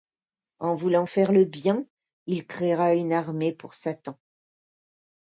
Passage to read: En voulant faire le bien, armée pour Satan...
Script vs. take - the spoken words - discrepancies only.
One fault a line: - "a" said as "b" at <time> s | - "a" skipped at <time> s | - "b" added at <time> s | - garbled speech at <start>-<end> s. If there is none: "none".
- "il créera une" added at 2.2 s